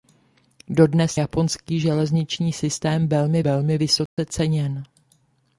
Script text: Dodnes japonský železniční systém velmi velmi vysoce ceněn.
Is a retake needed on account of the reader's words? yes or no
no